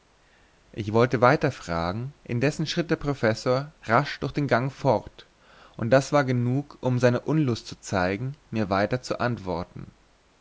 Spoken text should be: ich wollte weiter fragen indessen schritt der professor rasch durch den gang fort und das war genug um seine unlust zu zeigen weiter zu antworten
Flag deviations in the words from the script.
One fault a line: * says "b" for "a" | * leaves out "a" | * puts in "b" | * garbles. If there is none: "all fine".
* puts in "mir"